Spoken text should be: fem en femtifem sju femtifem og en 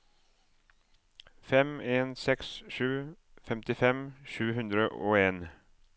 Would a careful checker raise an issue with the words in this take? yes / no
yes